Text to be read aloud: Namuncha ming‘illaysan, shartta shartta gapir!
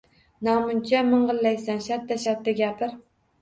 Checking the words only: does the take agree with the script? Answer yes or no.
yes